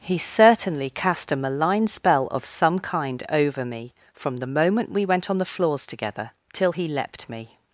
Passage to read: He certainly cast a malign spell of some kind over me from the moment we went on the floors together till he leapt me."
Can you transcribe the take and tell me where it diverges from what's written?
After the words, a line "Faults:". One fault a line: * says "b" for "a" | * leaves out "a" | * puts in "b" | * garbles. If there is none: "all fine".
He certainly cast a malign spell of some kind over me from the moment we went on the floors together till he leapt me."
Faults:
all fine